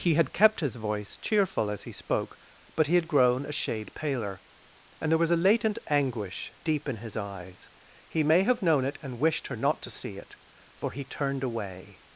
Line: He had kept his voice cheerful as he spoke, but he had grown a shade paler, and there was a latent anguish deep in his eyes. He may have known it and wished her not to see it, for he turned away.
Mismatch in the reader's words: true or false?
false